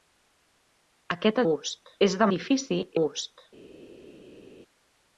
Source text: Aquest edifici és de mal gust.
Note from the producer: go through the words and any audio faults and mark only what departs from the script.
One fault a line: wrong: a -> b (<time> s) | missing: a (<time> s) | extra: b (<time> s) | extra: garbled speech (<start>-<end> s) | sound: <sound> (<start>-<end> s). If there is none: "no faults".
wrong: edifici -> gust (1.5 s)
wrong: mal -> edifici (2.3 s)